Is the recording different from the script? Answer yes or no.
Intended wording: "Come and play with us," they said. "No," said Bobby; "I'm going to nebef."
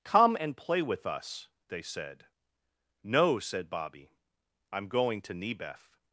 no